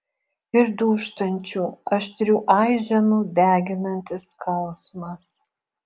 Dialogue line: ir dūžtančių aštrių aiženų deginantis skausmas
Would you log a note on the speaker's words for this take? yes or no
no